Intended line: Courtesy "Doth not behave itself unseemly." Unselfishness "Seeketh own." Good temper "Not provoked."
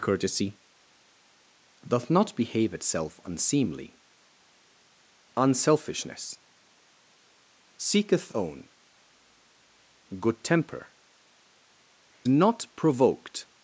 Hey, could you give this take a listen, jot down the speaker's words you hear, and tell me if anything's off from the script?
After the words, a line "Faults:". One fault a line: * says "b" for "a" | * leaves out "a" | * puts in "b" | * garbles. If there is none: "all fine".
Courtesy "Doth not behave itself unseemly." Unselfishness "Seeketh own." Good temper "Not provoked."
Faults:
all fine